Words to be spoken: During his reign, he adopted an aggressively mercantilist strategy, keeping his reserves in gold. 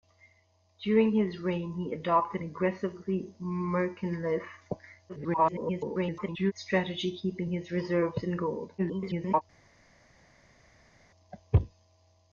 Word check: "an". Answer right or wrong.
wrong